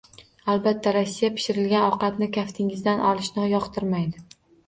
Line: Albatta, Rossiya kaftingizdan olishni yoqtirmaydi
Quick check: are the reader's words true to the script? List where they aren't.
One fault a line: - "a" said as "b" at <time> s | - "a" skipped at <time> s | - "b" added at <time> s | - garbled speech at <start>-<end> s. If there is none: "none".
- "pishirilgan ovqatni" added at 1.4 s